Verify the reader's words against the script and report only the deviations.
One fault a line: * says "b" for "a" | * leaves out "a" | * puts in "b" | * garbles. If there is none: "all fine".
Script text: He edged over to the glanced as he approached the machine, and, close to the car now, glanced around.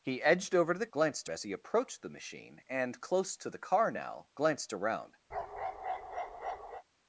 all fine